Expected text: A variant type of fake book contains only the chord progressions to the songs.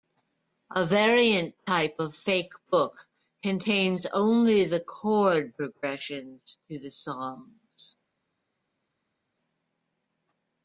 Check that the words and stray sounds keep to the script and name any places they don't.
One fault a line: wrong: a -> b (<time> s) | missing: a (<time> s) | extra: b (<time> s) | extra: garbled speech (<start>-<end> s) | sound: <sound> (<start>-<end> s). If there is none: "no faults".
no faults